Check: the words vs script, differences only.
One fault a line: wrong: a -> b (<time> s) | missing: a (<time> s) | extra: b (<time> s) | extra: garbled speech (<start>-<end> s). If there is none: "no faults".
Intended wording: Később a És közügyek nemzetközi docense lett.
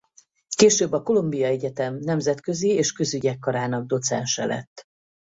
extra: Columbia Egyetem nemzetközi (1.0 s)
wrong: nemzetközi -> karának (3.4 s)